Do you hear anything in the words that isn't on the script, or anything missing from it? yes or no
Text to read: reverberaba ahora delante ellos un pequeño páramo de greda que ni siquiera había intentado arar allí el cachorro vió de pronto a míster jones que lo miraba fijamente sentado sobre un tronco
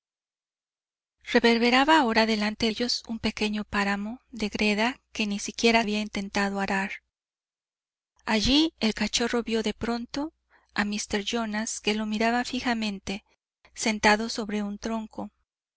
no